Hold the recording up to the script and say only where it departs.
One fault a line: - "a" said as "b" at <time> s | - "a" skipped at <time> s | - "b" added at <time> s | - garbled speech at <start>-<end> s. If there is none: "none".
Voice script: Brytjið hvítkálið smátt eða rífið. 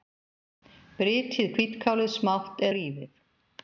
- "eða" skipped at 2.6 s